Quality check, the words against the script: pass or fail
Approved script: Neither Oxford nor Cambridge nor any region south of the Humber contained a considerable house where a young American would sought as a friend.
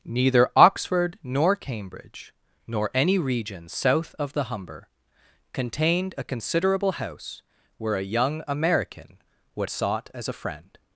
pass